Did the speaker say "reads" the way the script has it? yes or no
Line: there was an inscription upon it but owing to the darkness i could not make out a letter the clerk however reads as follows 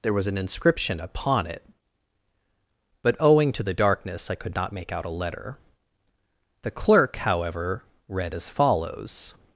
no